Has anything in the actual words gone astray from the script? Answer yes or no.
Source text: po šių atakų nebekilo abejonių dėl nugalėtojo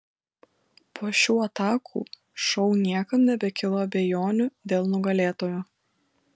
yes